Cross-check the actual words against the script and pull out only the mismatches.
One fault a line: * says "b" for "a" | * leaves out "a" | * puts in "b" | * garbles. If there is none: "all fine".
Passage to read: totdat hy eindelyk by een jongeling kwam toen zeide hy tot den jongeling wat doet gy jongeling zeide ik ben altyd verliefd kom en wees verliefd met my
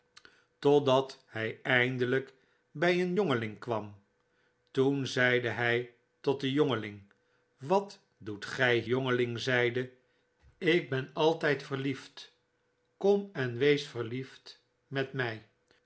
all fine